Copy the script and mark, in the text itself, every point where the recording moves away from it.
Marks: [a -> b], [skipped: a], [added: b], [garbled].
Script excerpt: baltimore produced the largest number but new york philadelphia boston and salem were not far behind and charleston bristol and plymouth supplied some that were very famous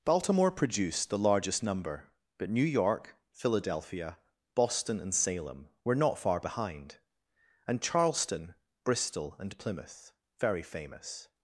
baltimore produced the largest number but new york philadelphia boston and salem were not far behind and charleston bristol and plymouth [skipped: supplied some that were] very famous